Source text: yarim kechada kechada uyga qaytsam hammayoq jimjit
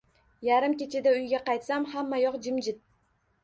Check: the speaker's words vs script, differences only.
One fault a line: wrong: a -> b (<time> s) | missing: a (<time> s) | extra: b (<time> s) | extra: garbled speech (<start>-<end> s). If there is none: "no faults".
missing: kechada (1.1 s)